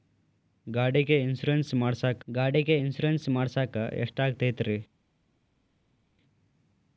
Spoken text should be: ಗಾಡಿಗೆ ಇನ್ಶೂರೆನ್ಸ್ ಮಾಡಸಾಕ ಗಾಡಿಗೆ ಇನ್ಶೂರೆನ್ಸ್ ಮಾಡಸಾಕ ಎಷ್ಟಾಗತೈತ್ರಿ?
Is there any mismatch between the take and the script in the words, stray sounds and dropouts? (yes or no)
no